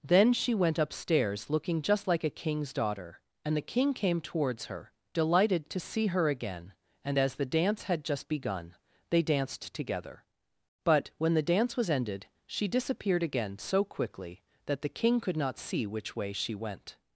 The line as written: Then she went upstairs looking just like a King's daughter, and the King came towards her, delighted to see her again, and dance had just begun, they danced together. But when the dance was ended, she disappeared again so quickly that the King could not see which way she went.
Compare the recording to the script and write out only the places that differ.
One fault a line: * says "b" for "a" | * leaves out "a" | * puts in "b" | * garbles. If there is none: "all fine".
* puts in "as the"